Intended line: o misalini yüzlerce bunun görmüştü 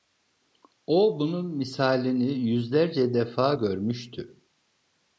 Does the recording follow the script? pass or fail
fail